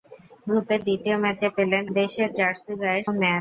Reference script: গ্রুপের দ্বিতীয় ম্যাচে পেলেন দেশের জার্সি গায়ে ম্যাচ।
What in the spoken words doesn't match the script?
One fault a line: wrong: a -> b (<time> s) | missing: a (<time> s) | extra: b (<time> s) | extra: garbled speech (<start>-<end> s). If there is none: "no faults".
no faults